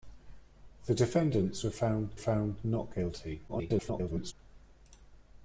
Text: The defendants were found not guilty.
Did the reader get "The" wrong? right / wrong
right